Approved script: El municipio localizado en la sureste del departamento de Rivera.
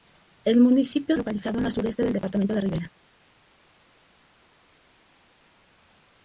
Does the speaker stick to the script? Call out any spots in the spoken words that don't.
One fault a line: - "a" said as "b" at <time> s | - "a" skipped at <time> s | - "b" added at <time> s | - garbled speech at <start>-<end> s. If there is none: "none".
none